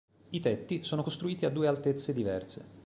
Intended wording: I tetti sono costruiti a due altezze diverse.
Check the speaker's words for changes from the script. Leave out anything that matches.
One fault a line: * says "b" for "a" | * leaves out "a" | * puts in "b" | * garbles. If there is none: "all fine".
all fine